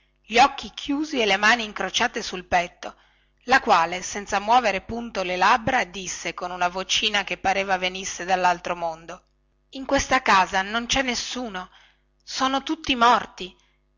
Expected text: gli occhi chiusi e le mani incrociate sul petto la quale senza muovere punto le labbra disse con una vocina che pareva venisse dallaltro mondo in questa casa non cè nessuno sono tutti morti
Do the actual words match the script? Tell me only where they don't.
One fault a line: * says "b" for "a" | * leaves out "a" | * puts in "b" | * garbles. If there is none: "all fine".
all fine